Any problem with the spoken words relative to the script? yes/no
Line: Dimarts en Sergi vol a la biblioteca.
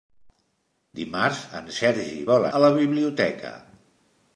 no